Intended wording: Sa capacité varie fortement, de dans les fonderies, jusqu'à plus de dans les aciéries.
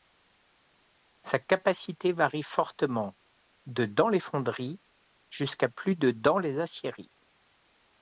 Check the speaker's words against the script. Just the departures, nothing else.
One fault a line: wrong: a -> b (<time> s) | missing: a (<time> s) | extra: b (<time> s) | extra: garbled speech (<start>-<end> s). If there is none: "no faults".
no faults